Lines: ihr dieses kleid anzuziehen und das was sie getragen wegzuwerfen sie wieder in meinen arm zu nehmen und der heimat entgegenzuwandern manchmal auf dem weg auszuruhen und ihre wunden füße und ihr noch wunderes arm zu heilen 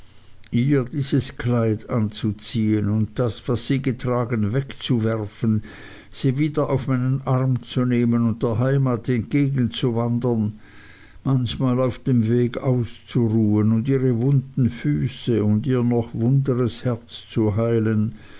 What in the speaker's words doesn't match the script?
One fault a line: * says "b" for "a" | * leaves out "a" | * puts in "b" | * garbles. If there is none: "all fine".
* says "auf" for "in"
* says "herz" for "arm"